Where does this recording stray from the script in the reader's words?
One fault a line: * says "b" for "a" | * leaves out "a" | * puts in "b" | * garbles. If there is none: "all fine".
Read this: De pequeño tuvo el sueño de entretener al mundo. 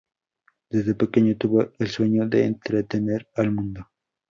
* says "Desde" for "De"